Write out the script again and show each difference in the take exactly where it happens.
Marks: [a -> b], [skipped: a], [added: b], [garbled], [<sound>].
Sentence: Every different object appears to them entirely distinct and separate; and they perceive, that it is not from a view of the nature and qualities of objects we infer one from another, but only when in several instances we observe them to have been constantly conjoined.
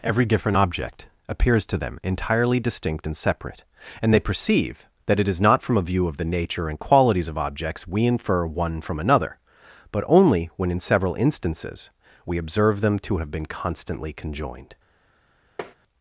Every different object appears to them entirely distinct and separate; and they perceive, that it is not from a view of the nature and qualities of objects we infer one from another, but only when in several instances we observe them to have been constantly conjoined. [tap]